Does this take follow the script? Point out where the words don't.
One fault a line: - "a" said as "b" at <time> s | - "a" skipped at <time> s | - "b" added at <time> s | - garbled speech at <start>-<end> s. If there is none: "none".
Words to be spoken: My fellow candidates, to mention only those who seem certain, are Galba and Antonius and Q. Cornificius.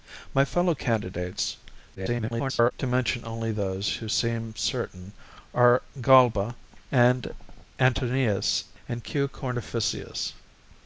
- garbled speech at 1.9-2.7 s